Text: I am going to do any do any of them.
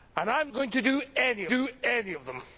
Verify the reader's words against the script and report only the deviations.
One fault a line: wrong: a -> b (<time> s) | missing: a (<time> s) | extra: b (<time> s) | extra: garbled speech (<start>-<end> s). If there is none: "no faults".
no faults